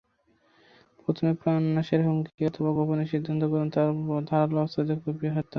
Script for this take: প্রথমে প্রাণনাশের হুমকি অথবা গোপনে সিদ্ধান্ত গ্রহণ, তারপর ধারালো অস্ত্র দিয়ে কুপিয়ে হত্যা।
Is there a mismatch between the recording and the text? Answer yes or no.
no